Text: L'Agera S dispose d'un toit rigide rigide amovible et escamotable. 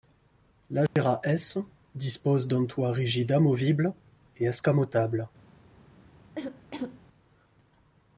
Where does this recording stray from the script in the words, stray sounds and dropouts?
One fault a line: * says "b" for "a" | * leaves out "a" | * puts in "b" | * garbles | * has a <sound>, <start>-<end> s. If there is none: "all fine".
* has a dropout, 0.9-1.0 s
* leaves out "rigide"
* has a cough, 6.4-7.0 s